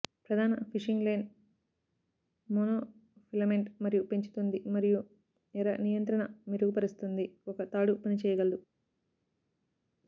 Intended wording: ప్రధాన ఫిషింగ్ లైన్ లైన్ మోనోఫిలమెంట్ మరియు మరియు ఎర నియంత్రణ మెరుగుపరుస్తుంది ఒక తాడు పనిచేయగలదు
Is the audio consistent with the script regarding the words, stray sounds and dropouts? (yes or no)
no